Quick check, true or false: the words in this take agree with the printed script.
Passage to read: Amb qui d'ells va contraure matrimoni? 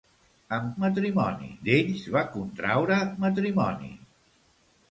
false